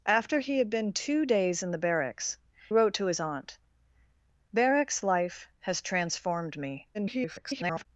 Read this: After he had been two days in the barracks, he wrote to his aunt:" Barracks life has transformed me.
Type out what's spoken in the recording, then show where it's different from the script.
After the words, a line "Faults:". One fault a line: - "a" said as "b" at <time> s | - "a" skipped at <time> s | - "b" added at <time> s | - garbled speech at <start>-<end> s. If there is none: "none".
After he had been two days in the barracks, wrote to his aunt:" Barracks life has transformed me. [garbled]
Faults:
- "he" skipped at 2.4 s
- garbled speech at 6.9-7.9 s